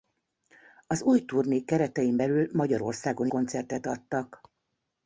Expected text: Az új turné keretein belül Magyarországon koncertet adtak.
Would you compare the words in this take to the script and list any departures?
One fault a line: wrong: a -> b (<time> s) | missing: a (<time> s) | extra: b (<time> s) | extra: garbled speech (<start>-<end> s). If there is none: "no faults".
no faults